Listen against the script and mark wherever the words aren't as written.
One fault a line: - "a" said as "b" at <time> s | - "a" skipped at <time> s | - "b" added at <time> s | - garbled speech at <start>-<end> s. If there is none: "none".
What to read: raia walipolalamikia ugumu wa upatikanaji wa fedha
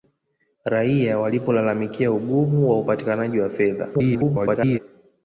- garbled speech at 3.9-4.8 s